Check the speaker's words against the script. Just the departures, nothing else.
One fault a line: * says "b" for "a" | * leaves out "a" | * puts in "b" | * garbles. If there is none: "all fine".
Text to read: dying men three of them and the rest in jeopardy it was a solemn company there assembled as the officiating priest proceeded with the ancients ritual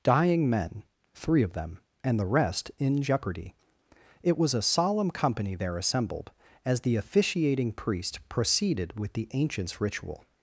all fine